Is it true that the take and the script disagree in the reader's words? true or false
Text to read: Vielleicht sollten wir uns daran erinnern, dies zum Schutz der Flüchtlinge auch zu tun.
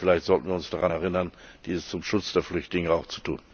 false